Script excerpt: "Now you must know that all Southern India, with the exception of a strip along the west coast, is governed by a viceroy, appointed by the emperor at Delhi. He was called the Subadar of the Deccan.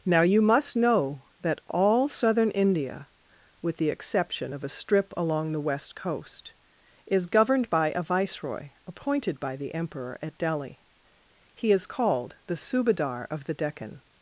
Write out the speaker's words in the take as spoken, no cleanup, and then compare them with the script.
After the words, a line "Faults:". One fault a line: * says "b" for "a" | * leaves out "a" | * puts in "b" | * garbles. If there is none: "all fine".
"Now you must know that all Southern India, with the exception of a strip along the west coast, is governed by a viceroy, appointed by the emperor at Delhi. He is called the Subadar of the Deccan.
Faults:
* says "is" for "was"